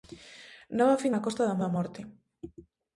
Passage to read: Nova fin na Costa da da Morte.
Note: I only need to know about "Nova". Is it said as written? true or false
true